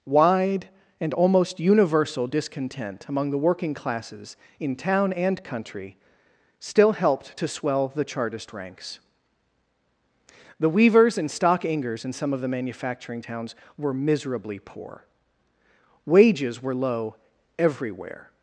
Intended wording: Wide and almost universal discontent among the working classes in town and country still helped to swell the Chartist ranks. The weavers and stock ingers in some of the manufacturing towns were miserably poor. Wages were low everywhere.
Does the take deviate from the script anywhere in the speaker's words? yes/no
no